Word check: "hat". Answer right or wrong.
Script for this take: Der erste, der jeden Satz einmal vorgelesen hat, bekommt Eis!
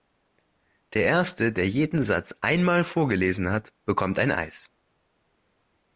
right